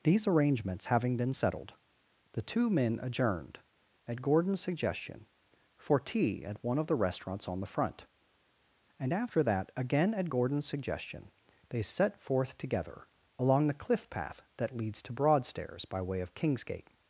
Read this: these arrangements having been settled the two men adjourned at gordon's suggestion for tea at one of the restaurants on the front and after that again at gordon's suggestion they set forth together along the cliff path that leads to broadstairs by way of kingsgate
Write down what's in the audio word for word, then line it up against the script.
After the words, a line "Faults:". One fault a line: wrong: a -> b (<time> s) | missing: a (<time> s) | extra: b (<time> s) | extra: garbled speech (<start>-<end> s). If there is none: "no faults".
these arrangements having been settled the two men adjourned at gordon's suggestion for tea at one of the restaurants on the front and after that again at gordon's suggestion they set forth together along the cliff path that leads to broadstairs by way of kingsgate
Faults:
no faults